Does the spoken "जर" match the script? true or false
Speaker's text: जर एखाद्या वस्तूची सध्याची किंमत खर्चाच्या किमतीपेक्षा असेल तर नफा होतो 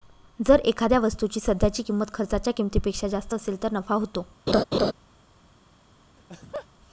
true